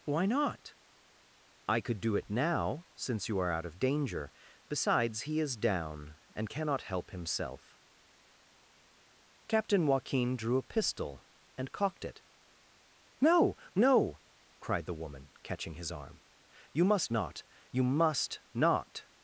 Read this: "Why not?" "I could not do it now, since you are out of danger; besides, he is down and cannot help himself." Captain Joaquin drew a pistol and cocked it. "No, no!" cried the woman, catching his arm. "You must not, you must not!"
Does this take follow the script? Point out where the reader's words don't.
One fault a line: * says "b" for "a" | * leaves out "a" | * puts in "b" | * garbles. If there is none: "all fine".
* leaves out "not"